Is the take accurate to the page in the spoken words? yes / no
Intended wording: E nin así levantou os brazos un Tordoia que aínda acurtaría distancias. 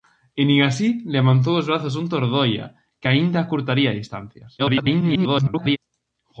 no